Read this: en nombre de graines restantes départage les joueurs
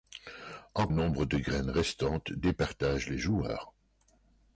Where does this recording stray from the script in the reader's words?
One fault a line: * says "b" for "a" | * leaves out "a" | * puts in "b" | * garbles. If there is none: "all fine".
all fine